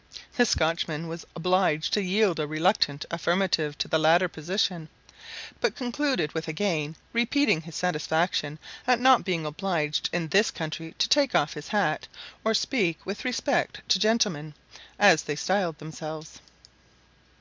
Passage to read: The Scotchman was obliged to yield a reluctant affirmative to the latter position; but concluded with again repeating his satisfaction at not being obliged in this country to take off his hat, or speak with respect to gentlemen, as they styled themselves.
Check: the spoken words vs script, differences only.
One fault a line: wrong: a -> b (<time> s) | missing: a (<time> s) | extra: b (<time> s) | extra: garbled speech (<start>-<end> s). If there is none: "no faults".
no faults